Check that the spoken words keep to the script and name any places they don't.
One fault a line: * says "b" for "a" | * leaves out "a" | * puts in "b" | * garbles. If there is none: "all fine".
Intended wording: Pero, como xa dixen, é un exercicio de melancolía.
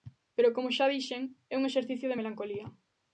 all fine